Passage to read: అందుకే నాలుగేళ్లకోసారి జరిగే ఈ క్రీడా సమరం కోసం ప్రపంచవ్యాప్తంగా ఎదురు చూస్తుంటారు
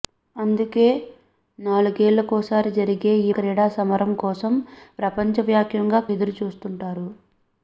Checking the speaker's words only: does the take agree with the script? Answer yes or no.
yes